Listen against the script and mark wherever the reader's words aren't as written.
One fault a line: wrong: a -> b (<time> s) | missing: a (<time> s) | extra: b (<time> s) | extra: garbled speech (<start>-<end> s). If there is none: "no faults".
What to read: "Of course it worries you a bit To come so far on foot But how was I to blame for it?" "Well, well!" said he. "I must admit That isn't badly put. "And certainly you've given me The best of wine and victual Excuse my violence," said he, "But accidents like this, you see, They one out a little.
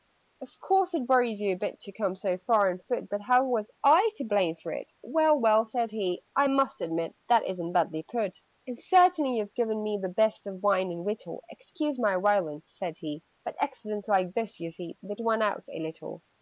no faults